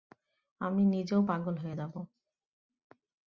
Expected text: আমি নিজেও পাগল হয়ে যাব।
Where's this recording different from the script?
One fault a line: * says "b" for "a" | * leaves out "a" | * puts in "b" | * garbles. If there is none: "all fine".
all fine